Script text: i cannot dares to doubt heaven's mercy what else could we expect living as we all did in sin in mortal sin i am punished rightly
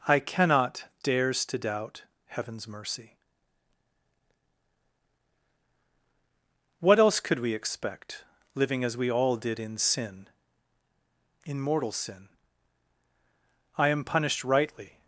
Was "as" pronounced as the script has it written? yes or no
yes